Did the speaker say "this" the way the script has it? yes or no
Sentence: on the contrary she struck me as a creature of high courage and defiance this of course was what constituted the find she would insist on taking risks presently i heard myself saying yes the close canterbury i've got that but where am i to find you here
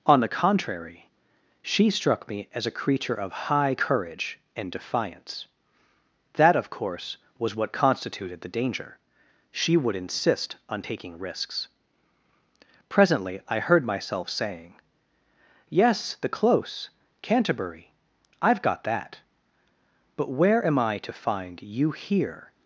no